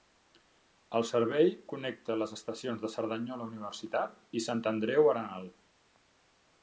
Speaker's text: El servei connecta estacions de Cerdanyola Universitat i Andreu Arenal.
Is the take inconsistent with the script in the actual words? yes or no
yes